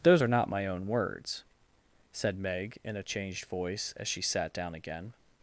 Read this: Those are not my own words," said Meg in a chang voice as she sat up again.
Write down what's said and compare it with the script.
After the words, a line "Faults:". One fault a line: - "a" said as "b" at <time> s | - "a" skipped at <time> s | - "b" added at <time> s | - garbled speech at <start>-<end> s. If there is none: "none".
Those are not my own words," said Meg in a changed voice as she sat down again.
Faults:
- "chang" said as "changed" at 3.0 s
- "up" said as "down" at 4.5 s